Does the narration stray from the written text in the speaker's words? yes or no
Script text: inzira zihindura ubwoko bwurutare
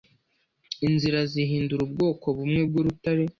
yes